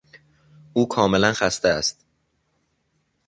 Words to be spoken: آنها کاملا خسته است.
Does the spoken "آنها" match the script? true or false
false